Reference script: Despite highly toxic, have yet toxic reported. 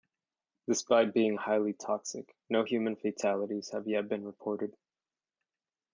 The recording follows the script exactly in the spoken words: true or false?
false